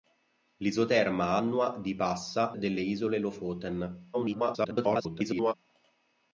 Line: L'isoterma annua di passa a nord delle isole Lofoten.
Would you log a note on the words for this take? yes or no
yes